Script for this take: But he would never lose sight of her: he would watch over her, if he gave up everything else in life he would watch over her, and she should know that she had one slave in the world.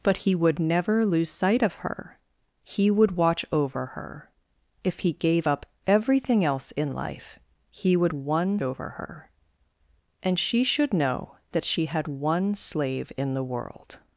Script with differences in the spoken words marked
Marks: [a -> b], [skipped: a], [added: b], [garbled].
But he would never lose sight of her: he would watch over her, if he gave up everything else in life he would [watch -> one] over her, and she should know that she had one slave in the world.